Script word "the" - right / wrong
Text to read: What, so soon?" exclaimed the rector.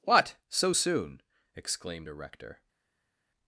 wrong